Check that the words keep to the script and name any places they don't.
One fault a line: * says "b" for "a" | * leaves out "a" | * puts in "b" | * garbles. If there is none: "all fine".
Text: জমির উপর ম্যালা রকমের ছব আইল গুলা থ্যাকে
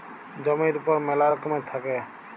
* leaves out "ছব আইল গুলা"